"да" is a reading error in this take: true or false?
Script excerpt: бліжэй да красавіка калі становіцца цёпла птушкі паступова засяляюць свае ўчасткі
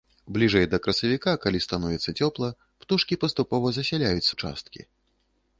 false